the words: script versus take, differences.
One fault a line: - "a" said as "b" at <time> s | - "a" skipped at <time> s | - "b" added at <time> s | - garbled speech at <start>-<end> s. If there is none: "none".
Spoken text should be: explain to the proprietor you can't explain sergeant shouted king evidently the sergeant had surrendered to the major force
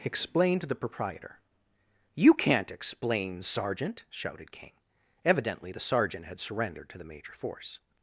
none